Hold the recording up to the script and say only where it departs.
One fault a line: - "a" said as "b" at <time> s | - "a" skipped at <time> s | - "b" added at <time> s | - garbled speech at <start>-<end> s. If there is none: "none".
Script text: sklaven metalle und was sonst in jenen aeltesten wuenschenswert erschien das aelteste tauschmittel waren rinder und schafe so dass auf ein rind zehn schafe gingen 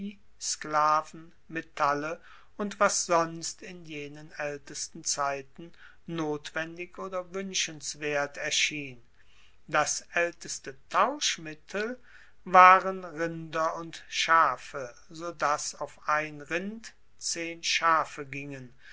- "zeiten notwendig oder" added at 5.0 s